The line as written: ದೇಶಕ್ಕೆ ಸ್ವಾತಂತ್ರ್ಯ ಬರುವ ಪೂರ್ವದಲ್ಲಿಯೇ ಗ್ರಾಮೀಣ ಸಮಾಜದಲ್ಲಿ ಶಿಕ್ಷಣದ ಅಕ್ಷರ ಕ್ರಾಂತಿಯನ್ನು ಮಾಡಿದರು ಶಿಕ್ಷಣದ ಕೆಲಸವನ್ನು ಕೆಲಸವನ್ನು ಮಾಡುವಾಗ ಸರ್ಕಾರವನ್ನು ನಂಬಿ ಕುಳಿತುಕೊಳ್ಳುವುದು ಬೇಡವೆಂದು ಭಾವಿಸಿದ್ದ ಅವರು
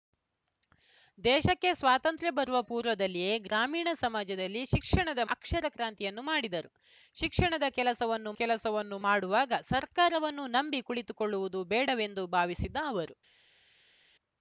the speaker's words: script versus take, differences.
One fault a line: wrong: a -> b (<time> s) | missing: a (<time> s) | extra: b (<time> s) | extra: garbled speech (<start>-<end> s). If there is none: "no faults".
no faults